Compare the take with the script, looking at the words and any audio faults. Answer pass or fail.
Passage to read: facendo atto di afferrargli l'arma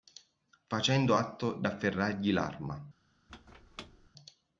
fail